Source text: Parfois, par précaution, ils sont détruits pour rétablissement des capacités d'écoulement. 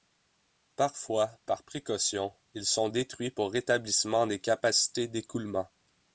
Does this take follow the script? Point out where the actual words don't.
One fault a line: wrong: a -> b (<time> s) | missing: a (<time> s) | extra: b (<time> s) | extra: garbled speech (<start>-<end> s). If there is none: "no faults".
no faults